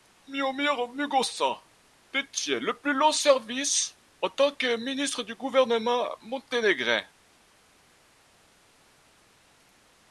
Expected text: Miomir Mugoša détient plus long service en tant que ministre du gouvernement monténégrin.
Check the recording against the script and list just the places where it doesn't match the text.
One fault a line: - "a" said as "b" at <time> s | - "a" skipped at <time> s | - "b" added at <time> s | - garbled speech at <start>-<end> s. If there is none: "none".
- "le" added at 2.6 s